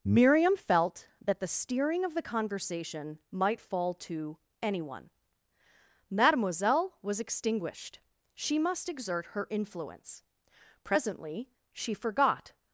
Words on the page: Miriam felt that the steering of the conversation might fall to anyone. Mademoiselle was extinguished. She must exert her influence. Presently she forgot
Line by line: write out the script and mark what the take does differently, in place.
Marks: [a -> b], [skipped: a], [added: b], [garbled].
Miriam felt that the steering of the conversation might fall to anyone. Mademoiselle was extinguished. She must exert her influence. Presently she forgot